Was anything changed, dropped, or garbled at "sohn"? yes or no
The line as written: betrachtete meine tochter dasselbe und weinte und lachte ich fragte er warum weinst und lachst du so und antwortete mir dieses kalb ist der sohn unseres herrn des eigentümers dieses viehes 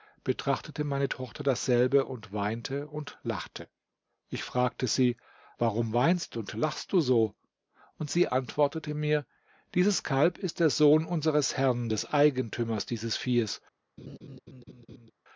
no